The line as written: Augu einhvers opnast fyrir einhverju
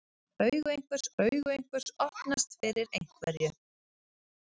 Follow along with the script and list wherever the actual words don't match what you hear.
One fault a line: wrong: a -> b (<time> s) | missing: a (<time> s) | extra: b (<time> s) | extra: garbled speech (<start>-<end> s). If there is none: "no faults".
extra: augu einhvers (1.2 s)